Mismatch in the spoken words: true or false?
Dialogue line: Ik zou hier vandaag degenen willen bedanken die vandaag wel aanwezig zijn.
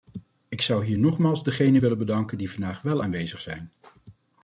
true